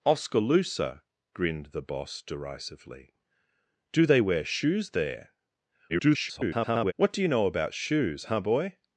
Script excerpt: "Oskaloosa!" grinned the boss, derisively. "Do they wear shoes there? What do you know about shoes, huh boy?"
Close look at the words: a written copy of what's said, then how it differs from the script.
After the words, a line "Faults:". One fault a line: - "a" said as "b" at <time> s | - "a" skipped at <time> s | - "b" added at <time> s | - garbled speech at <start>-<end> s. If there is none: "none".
"Oskaloosa!" grinned the boss, derisively. "Do they wear shoes there? [garbled] What do you know about shoes, huh boy?"
Faults:
- garbled speech at 5.9-6.9 s